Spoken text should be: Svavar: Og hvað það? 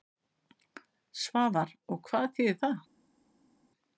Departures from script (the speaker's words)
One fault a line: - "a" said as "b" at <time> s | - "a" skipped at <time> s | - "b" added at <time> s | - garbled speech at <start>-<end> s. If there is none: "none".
- "þýðir" added at 2.4 s